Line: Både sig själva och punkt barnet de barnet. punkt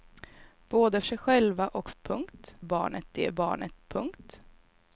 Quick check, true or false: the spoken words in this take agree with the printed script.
true